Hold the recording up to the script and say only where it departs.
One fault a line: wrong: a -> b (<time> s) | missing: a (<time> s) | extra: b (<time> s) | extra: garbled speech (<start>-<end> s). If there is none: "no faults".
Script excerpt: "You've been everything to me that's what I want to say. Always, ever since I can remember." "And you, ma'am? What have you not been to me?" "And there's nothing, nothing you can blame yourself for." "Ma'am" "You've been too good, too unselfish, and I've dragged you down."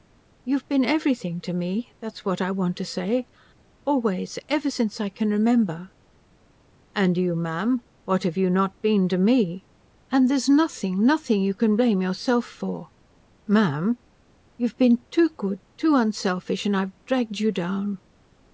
no faults